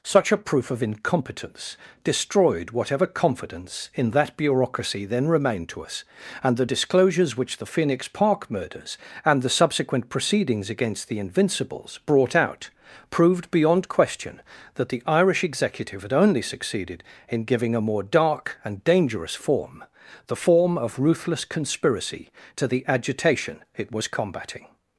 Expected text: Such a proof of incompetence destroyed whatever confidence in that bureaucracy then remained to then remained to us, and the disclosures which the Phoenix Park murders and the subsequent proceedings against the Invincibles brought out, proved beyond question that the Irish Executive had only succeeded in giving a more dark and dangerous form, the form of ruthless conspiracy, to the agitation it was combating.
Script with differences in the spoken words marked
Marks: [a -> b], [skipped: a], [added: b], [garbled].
Such a proof of incompetence destroyed whatever confidence in that bureaucracy then remained to [skipped: then remained to] us, and the disclosures which the Phoenix Park murders and the subsequent proceedings against the Invincibles brought out, proved beyond question that the Irish Executive had only succeeded in giving a more dark and dangerous form, the form of ruthless conspiracy, to the agitation it was combating.